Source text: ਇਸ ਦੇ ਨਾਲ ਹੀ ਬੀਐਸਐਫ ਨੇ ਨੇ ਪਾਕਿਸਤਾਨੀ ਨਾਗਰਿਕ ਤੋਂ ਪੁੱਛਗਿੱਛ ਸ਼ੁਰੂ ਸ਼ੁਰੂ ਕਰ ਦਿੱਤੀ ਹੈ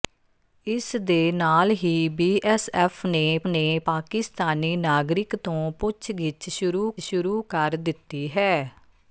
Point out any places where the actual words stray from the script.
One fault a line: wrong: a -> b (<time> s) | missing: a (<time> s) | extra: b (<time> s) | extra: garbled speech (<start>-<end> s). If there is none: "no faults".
no faults